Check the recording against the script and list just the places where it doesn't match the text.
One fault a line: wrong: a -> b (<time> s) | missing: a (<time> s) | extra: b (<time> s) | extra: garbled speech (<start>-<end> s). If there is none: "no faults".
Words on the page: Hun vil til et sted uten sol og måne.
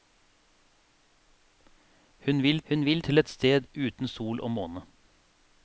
extra: hun vil (2.7 s)